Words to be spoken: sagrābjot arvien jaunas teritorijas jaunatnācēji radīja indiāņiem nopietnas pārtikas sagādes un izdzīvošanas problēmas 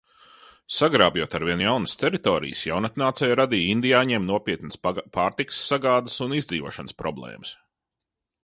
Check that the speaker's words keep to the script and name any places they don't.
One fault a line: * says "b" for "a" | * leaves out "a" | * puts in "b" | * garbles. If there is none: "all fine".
all fine